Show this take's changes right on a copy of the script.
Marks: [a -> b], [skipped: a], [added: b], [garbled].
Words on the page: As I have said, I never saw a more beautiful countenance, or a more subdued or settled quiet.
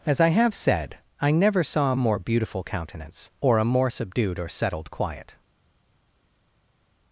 As I have said, I never saw a more beautiful countenance, or a more subdued or settled quiet.